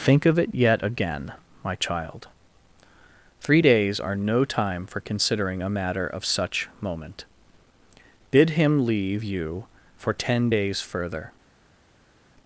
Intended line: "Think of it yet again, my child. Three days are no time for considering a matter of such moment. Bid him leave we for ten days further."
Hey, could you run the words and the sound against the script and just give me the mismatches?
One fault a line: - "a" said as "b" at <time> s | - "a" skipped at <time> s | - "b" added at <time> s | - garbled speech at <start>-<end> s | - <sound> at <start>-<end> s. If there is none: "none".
- "we" said as "you" at 9.2 s